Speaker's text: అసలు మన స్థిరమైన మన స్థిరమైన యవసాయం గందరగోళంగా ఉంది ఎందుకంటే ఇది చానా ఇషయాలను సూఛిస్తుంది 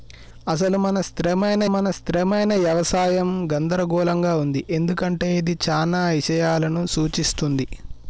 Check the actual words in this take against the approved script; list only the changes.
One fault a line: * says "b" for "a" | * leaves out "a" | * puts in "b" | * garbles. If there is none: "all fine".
all fine